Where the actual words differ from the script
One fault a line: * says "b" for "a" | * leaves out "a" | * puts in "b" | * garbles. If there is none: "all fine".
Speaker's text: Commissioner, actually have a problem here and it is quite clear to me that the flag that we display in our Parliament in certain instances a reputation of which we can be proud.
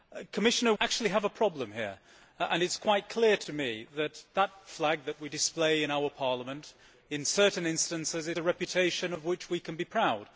all fine